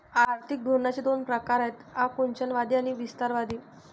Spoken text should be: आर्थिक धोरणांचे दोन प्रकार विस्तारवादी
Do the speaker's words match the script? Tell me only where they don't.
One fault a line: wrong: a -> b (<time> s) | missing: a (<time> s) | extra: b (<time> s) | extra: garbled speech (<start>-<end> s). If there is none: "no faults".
extra: आहेत आकुंचनवादी आणि (1.6 s)